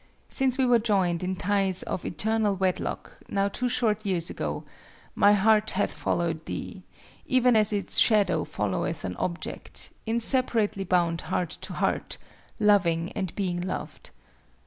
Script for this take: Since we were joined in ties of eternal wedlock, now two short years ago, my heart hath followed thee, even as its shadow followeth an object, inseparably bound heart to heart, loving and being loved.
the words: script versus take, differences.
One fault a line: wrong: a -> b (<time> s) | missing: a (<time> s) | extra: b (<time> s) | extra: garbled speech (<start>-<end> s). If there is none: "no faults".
no faults